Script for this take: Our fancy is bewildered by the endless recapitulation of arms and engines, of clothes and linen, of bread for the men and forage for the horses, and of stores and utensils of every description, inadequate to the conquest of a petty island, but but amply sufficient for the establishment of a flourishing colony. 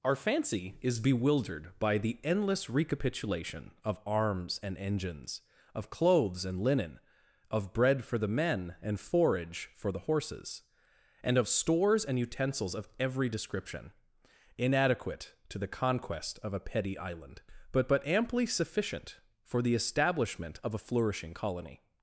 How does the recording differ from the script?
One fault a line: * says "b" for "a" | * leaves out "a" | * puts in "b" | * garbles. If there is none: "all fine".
all fine